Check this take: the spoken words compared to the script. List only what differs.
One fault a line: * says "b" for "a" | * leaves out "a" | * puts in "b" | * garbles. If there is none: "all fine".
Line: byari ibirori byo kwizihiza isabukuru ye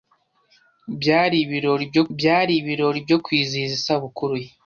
* puts in "byari ibirori byo"